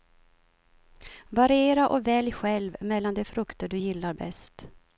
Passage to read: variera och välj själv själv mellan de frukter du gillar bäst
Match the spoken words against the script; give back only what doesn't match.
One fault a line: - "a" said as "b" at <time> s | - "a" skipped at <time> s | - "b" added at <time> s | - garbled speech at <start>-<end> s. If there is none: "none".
- "själv" skipped at 2.8 s